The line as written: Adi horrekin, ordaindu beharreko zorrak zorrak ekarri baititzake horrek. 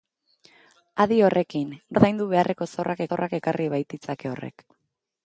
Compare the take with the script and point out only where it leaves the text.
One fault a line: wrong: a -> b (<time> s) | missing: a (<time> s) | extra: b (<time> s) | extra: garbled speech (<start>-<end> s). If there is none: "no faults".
no faults